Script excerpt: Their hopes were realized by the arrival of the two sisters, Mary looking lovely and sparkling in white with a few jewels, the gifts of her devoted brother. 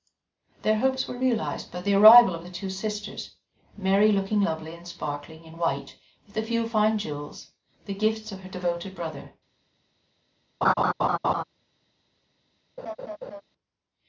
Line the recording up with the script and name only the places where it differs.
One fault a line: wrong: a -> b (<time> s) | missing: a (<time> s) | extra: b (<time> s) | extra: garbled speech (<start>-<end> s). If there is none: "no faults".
extra: fine (6.7 s)